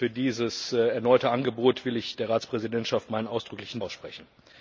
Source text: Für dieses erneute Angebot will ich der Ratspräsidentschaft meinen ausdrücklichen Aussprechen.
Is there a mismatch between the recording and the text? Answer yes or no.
no